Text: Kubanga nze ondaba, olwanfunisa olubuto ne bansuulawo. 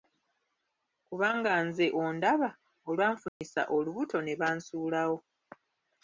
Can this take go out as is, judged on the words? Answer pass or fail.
pass